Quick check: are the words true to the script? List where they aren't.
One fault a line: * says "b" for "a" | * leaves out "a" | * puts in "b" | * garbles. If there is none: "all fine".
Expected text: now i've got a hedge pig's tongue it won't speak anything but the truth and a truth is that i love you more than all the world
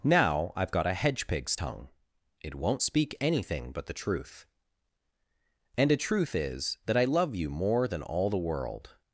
all fine